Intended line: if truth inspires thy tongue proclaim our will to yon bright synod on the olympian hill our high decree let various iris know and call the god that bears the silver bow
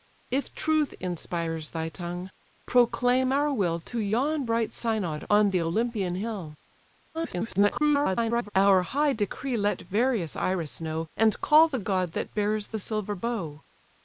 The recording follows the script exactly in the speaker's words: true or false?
false